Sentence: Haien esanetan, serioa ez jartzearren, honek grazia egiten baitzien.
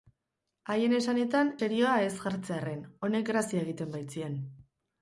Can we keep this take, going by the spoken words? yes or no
yes